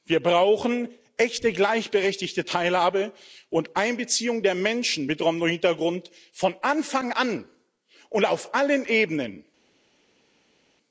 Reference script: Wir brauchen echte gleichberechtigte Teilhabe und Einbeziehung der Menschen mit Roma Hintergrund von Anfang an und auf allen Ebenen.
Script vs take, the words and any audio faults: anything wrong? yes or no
no